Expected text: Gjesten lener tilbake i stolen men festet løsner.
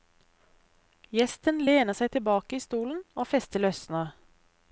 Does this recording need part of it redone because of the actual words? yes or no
yes